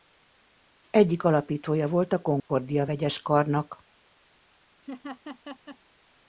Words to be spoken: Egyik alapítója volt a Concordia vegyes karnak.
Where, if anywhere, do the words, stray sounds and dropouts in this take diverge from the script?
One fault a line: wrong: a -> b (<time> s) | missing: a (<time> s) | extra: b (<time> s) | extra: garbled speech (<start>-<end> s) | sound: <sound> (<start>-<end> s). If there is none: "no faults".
sound: dropout (2.4-2.5 s)
sound: laugh (4.8-5.8 s)